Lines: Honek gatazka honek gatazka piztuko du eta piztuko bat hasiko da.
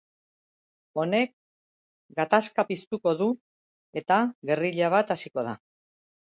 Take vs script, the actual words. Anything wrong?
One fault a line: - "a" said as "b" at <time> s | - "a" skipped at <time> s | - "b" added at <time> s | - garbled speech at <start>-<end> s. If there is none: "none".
- "honek gatazka" skipped at 2.7 s
- "piztuko" said as "gerrilla" at 4.5 s